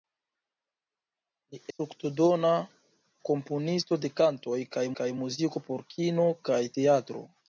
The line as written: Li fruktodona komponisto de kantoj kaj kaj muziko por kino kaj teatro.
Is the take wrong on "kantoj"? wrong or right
right